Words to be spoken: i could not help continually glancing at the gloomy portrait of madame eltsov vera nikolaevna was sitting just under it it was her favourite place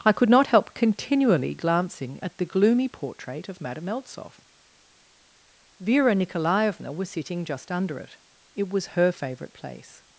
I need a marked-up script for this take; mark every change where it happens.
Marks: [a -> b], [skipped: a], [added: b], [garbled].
i could not help continually glancing at the gloomy portrait of madame eltsov vera nikolaevna was sitting just under it it was her favourite place